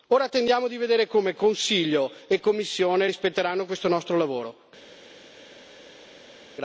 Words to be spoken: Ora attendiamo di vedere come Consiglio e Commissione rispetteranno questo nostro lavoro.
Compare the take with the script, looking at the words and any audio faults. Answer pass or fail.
pass